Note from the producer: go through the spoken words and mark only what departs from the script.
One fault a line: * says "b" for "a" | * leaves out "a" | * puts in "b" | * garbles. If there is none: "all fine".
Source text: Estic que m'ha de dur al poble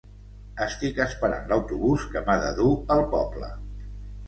* puts in "esperant l'autobús"